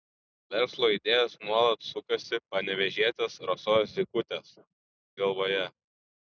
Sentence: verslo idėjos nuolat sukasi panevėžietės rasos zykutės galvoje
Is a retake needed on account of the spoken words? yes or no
no